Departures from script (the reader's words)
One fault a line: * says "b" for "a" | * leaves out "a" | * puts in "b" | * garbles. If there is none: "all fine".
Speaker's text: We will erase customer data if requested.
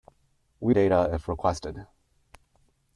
* leaves out "will erase customer"